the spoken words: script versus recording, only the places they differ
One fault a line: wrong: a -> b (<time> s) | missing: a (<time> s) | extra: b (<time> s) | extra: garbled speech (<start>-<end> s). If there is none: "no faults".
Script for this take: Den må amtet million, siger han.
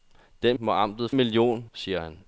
no faults